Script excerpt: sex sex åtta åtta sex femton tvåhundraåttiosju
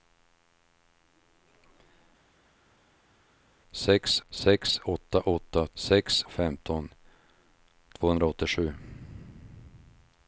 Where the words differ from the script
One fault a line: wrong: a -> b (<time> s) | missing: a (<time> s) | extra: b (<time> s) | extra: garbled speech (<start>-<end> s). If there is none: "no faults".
no faults